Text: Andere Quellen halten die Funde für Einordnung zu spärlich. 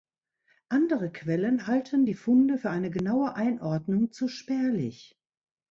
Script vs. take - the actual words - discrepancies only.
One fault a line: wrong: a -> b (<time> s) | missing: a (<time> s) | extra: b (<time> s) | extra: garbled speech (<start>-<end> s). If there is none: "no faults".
extra: eine genaue (2.7 s)